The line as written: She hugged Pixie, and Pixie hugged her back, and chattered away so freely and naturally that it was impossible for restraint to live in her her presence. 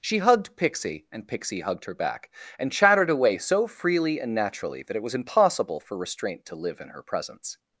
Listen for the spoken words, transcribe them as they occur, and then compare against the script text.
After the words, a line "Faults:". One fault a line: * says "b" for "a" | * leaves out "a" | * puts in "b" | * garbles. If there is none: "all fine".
She hugged Pixie, and Pixie hugged her back, and chattered away so freely and naturally that it was impossible for restraint to live in her presence.
Faults:
* leaves out "her"